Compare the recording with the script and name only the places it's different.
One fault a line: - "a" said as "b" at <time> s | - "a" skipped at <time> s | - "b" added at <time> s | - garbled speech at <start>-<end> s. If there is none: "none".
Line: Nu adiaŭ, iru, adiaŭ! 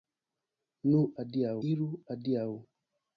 none